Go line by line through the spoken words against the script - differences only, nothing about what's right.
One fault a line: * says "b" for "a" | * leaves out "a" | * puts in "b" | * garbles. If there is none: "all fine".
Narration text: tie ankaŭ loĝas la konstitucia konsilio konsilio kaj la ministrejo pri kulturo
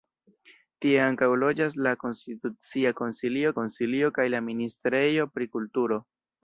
all fine